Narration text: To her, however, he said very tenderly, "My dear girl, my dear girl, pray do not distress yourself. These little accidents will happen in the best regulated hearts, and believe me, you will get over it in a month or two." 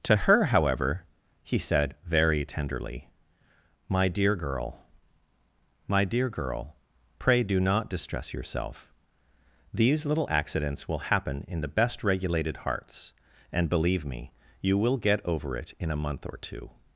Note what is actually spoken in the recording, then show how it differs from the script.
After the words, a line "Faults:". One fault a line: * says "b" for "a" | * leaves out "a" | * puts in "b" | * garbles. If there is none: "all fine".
To her, however, he said very tenderly, "My dear girl, my dear girl, pray do not distress yourself. These little accidents will happen in the best regulated hearts, and believe me, you will get over it in a month or two."
Faults:
all fine